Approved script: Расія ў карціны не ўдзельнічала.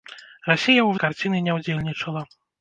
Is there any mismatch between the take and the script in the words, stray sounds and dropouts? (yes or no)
no